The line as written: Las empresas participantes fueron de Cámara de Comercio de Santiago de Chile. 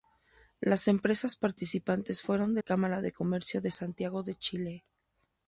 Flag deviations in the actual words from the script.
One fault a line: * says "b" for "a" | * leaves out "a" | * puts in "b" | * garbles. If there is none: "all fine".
all fine